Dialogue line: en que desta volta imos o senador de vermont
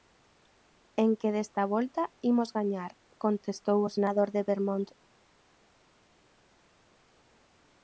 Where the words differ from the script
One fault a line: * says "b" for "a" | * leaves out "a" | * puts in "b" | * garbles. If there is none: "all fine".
* puts in "gañar contestou"